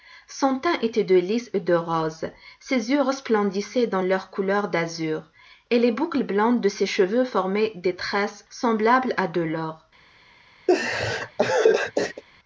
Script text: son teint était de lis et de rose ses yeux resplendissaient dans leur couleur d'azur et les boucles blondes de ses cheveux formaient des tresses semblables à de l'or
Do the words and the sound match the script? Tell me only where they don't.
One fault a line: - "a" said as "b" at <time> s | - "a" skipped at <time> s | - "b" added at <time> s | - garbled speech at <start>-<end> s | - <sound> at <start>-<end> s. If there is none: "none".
- laugh at 10.7-12.2 s